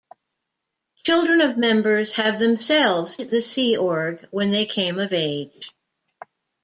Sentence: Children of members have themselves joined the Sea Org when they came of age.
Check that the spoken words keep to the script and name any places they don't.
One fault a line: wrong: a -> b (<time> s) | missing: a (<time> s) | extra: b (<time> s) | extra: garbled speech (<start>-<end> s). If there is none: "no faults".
missing: joined (3.2 s)